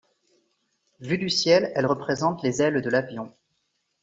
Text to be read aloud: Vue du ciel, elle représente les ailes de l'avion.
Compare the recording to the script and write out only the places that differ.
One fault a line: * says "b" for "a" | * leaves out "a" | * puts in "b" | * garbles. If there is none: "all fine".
all fine